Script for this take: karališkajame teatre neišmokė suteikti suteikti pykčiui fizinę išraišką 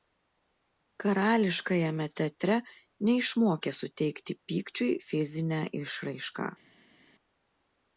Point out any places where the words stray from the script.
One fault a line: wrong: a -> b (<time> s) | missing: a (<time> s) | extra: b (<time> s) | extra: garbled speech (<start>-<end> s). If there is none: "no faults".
missing: suteikti (4.4 s)